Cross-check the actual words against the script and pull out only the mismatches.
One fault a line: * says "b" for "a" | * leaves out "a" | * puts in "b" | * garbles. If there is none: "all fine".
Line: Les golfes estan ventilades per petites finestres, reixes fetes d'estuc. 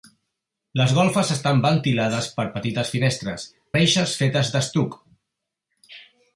all fine